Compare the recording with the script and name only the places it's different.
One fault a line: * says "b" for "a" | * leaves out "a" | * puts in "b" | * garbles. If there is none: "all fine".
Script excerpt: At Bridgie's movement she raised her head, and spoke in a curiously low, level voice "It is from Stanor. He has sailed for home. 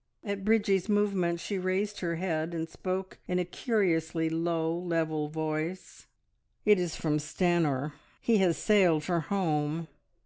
all fine